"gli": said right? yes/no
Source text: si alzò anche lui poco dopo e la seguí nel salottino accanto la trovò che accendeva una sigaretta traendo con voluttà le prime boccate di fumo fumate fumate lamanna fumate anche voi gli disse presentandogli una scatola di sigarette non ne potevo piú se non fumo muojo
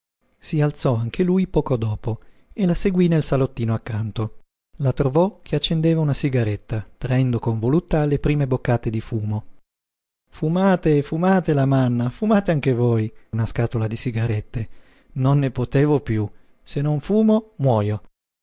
no